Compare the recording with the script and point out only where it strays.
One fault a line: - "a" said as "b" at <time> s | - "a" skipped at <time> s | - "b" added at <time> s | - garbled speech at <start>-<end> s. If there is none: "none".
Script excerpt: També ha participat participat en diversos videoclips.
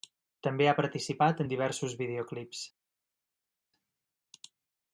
- "participat" skipped at 1.4 s